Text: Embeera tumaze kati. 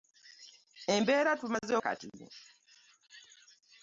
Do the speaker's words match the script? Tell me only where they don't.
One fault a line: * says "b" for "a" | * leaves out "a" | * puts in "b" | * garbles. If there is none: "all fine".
all fine